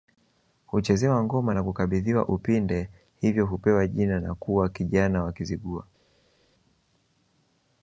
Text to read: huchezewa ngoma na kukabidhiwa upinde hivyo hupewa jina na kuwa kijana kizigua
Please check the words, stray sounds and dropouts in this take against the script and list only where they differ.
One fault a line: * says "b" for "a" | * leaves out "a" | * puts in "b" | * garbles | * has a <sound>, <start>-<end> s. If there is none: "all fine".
* puts in "wa"